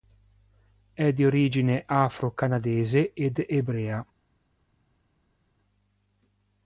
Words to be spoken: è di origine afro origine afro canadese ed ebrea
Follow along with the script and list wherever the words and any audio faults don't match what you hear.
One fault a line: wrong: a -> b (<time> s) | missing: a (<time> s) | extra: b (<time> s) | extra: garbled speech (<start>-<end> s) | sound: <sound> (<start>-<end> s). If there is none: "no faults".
missing: origine afro (2.3 s)